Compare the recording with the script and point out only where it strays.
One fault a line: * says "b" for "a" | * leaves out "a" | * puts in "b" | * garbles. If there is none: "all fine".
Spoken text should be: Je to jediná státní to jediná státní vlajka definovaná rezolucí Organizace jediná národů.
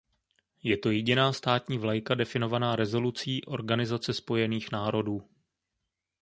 * leaves out "to jediná státní"
* says "spojených" for "jediná"